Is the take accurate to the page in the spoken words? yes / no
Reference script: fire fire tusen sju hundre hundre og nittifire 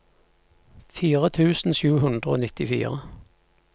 no